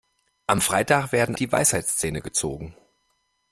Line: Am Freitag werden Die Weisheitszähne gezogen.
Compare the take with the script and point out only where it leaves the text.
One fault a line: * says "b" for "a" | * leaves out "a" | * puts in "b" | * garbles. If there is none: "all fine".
all fine